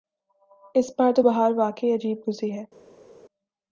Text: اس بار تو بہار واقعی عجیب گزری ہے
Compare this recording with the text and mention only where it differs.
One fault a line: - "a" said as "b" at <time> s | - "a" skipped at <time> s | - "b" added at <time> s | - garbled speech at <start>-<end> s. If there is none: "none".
none